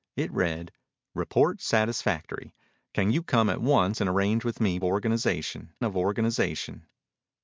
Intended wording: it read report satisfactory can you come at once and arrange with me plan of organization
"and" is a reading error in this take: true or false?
false